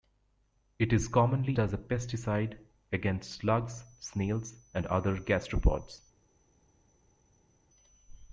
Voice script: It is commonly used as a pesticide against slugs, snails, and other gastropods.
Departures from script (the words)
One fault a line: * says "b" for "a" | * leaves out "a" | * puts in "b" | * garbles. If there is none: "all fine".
* leaves out "used"